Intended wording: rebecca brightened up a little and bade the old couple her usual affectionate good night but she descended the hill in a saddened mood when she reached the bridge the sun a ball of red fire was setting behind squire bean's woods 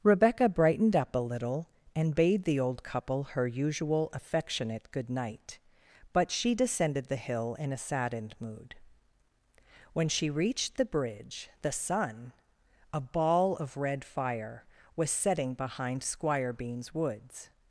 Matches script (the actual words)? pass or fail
pass